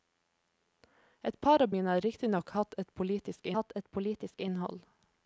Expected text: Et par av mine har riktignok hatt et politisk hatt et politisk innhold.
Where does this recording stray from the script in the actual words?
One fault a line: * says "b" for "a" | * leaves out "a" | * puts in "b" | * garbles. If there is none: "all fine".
all fine